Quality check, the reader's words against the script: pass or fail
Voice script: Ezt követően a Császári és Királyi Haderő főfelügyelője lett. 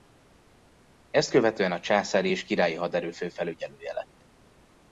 pass